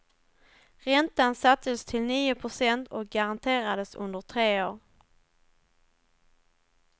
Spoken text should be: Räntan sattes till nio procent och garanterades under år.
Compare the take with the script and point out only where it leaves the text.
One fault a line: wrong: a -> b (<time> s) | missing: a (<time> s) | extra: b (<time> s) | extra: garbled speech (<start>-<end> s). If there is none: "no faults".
extra: tre (4.2 s)